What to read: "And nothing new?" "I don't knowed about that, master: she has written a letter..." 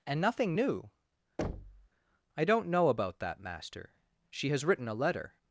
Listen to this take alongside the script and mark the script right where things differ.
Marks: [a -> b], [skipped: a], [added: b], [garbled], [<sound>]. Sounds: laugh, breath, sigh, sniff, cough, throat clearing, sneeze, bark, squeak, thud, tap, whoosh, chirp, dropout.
"And nothing new?" [thud] "I don't [knowed -> know] about that, master: she has written a letter..."